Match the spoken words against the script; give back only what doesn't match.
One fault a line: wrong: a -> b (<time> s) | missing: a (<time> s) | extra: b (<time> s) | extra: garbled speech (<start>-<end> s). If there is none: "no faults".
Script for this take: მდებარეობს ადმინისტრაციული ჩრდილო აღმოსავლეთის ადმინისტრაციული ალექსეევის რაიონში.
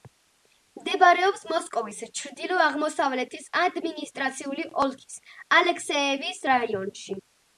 wrong: ადმინისტრაციული -> მოსკოვის (1.5 s)
extra: ოლქის (4.8 s)